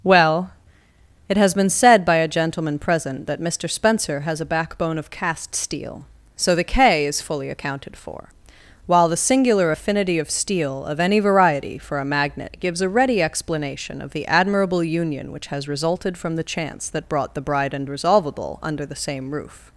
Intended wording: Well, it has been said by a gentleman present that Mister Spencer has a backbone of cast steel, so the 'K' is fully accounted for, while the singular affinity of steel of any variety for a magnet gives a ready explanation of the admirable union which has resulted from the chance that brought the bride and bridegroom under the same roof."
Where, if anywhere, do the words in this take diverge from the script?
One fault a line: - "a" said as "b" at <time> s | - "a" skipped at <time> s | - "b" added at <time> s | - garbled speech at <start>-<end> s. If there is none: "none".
- "bridegroom" said as "resolvable" at 17.9 s